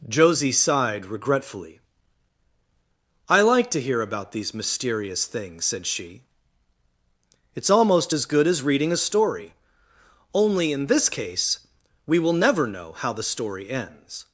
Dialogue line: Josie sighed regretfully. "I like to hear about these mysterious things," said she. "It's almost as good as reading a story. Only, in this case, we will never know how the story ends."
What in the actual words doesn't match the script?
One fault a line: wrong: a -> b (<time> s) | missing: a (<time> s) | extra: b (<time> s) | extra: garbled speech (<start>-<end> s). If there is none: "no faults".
no faults